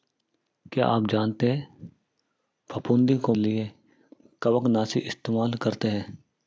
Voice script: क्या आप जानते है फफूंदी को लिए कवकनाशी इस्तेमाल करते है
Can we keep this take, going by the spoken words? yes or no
yes